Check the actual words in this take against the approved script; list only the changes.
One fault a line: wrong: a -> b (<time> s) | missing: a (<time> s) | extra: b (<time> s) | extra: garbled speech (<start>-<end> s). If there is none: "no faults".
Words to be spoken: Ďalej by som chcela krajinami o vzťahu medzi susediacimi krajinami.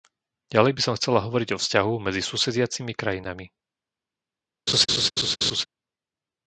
wrong: krajinami -> hovoriť (1.2 s)